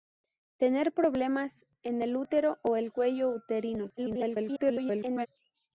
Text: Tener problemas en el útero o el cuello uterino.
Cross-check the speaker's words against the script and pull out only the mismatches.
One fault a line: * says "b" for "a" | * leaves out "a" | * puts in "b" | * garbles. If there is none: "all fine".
* garbles